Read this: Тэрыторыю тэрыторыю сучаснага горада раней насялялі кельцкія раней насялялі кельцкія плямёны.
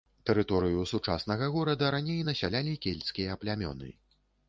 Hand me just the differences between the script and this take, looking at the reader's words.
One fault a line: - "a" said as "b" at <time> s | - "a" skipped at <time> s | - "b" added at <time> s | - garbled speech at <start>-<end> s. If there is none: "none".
- "тэрыторыю" skipped at 0.8 s
- "раней насялялі кельцкія" skipped at 3.4 s